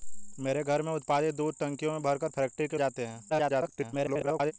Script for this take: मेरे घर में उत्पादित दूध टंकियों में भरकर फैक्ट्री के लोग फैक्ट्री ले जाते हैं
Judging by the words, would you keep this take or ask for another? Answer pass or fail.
fail